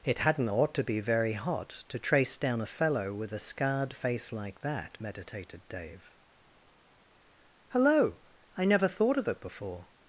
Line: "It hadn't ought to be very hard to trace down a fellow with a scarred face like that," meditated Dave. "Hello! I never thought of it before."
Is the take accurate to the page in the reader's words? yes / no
no